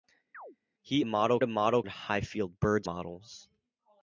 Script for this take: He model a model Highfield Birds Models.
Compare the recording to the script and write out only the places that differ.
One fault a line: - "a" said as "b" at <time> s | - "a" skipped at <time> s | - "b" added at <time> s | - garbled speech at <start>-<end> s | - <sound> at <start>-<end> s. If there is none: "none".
- chirp at 0.3-0.6 s